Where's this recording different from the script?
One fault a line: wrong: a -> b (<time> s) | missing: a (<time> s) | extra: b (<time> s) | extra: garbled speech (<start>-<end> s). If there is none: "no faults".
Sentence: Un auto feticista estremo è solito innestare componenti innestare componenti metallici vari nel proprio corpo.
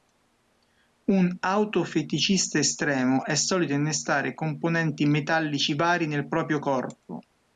missing: innestare componenti (5.0 s)